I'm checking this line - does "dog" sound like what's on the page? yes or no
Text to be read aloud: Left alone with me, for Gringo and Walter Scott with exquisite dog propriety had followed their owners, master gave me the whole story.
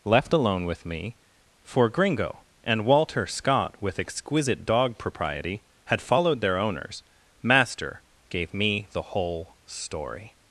yes